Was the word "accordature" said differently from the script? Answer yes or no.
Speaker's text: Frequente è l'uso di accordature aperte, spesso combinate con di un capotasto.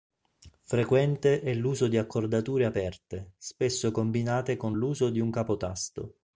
no